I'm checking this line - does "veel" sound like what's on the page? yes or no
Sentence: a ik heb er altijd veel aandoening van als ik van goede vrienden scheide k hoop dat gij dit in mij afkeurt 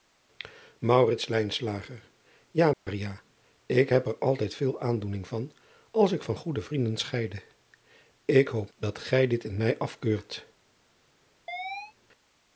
yes